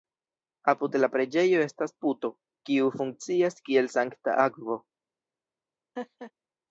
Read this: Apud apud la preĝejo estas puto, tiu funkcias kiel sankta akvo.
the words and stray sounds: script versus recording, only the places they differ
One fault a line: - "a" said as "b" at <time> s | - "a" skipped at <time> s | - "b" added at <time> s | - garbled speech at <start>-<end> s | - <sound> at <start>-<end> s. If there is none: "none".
- "apud" skipped at 1.0 s
- "tiu" said as "kiu" at 2.7 s
- laugh at 6.0-6.3 s